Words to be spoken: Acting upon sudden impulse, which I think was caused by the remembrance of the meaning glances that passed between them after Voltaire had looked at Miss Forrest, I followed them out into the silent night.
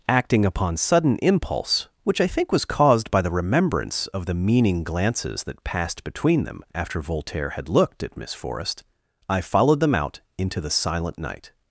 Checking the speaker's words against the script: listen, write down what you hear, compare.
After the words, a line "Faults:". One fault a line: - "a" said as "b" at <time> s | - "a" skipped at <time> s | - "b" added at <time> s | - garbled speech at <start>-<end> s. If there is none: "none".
Acting upon sudden impulse, which I think was caused by the remembrance of the meaning glances that passed between them after Voltaire had looked at Miss Forrest, I followed them out into the silent night.
Faults:
none